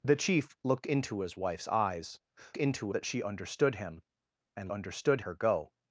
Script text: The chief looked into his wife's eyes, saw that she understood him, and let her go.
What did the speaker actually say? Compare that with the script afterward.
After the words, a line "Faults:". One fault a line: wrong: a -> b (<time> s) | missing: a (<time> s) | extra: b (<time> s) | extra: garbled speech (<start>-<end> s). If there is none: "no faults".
The chief looked into his wife's eyes, into that she understood him, and understood her go.
Faults:
wrong: saw -> into (2.6 s)
wrong: let -> understood (4.7 s)